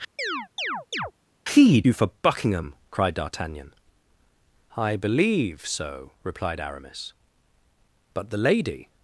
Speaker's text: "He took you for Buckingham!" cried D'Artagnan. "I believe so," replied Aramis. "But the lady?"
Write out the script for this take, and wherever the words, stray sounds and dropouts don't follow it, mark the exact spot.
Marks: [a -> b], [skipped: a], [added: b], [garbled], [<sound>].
[chirp] "He [skipped: took] you for Buckingham!" cried D'Artagnan. "I believe so," replied Aramis. "But the lady?"